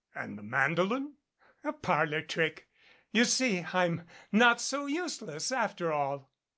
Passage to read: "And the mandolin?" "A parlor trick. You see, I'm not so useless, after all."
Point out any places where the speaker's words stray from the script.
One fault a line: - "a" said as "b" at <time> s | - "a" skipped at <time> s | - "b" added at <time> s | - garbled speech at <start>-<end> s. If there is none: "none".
none